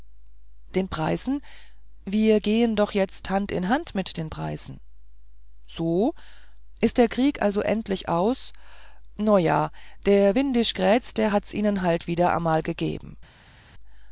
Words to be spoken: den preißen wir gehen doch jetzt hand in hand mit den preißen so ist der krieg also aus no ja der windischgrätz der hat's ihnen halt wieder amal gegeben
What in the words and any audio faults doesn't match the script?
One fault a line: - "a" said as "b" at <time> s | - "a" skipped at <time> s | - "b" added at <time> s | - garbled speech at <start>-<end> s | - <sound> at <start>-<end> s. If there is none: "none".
- "endlich" added at 7.6 s